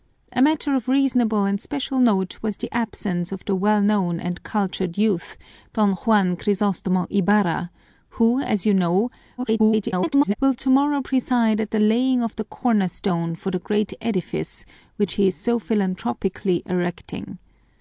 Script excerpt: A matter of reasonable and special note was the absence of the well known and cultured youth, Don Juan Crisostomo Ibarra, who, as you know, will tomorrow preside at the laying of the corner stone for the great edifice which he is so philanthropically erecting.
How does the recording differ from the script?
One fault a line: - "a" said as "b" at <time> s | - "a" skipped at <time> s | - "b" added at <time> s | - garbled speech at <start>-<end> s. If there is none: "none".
- garbled speech at 9.4-10.3 s